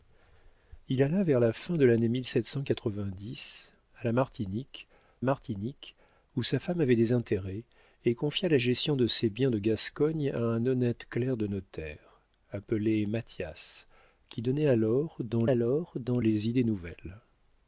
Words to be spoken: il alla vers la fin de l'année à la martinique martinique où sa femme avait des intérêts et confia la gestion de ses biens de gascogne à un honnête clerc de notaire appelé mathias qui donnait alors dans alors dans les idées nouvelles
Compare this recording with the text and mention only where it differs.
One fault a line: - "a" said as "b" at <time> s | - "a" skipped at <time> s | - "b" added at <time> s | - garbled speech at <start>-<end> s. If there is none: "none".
none